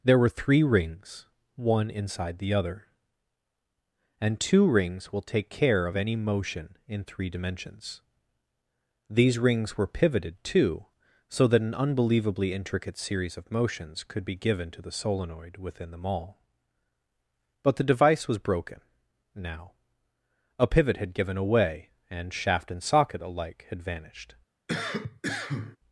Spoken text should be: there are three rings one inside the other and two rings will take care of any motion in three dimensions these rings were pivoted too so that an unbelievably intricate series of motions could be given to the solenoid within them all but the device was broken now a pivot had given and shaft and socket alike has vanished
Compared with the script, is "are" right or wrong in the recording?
wrong